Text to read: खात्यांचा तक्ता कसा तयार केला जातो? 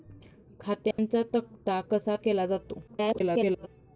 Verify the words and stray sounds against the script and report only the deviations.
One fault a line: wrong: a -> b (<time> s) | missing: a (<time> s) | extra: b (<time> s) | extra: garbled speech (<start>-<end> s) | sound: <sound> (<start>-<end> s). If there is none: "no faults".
sound: dropout (0.9-1.0 s)
missing: तयार (2.1 s)
extra: garbled speech (2.9-3.7 s)